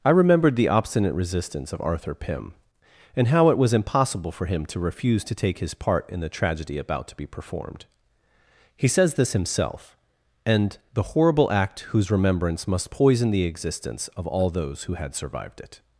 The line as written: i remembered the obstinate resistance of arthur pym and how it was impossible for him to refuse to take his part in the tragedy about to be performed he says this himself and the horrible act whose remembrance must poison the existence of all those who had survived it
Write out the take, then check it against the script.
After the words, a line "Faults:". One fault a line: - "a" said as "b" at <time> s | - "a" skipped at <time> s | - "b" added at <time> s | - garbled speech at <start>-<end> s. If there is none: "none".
i remembered the obstinate resistance of arthur pym and how it was impossible for him to refuse to take his part in the tragedy about to be performed he says this himself and the horrible act whose remembrance must poison the existence of all those who had survived it
Faults:
none